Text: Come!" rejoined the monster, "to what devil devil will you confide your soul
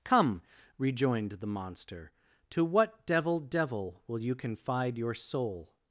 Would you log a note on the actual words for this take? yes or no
no